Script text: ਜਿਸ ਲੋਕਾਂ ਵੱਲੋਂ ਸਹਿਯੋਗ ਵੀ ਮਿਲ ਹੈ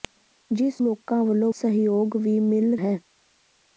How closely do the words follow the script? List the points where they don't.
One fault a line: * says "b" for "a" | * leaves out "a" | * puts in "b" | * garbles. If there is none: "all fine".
all fine